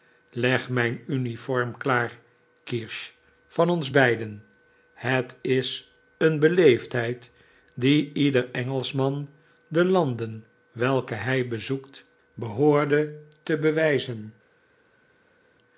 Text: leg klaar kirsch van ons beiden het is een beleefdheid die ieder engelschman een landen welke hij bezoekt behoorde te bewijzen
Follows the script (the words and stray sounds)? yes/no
no